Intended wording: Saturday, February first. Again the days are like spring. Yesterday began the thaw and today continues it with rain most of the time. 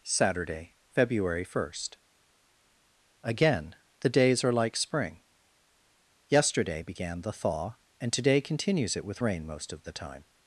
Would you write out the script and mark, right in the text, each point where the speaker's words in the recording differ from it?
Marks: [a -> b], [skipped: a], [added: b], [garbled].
Saturday, February first. Again the days are like spring. Yesterday began the thaw and today continues it with rain most of the time.